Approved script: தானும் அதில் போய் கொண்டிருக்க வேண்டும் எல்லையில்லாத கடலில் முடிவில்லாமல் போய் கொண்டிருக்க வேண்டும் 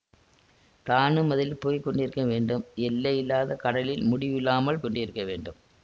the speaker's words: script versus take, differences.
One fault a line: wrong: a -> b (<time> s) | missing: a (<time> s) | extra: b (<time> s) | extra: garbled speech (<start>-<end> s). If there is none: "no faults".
missing: போய் (4.8 s)